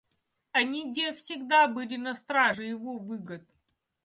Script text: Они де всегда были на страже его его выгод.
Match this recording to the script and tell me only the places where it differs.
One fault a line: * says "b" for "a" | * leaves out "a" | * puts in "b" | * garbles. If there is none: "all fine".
* leaves out "его"